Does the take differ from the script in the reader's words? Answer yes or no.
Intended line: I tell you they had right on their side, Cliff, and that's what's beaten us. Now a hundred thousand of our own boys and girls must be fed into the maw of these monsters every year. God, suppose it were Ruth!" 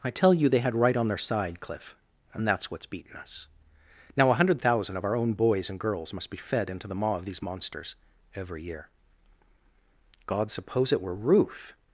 no